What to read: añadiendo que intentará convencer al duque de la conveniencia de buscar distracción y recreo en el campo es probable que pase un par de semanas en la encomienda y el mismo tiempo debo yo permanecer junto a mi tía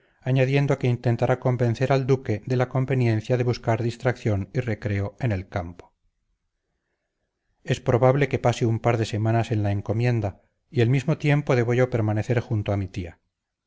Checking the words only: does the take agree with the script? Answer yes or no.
yes